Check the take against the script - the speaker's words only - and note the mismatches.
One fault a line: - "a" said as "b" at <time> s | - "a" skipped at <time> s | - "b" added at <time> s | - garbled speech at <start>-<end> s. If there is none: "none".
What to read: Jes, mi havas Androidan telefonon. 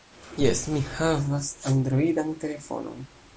none